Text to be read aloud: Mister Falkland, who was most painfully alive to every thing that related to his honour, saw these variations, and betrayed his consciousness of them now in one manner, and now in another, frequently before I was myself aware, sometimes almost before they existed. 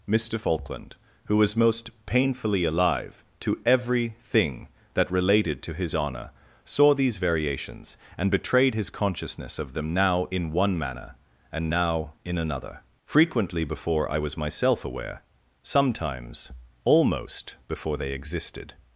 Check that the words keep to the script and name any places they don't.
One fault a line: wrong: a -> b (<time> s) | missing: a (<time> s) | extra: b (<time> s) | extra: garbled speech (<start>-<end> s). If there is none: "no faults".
no faults